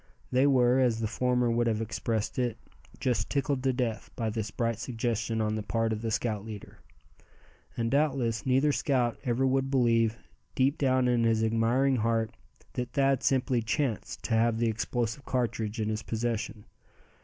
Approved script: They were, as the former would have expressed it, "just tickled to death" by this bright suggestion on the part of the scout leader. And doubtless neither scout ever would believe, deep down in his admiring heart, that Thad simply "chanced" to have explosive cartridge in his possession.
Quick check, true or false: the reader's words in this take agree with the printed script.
false